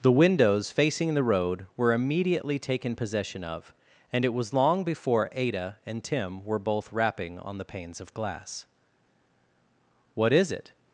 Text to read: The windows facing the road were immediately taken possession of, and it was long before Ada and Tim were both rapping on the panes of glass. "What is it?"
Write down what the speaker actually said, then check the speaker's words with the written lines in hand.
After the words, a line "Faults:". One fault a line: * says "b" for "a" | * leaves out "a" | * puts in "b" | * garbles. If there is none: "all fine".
The windows facing the road were immediately taken possession of, and it was long before Ada and Tim were both rapping on the panes of glass. "What is it?"
Faults:
all fine